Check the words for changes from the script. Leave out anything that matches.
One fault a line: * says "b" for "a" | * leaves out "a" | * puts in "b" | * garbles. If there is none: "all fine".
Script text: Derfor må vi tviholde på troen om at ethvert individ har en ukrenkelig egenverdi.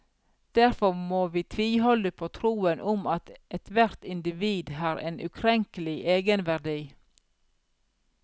all fine